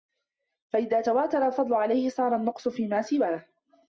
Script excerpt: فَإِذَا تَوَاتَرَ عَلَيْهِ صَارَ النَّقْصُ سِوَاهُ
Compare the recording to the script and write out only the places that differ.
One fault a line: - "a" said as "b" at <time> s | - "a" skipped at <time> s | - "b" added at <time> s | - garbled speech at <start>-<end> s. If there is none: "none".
- "الْفَضْلُ" added at 1.5 s
- "فِيمَا" added at 2.7 s